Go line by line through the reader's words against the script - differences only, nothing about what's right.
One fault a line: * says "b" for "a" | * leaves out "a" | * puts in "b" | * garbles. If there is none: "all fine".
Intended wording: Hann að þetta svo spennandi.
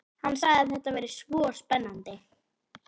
* puts in "sagði"
* puts in "væri"